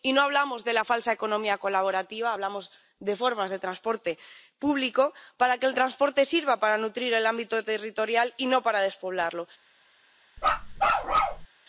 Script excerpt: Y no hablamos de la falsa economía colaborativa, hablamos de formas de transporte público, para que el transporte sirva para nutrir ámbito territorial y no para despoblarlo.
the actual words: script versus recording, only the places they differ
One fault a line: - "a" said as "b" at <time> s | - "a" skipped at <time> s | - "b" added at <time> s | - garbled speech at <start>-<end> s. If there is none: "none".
- "el" added at 7.1 s